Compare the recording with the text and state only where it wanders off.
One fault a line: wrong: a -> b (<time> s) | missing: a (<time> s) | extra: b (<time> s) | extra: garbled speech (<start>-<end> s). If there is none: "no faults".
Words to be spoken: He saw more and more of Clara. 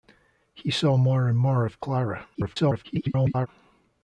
extra: garbled speech (2.3-3.5 s)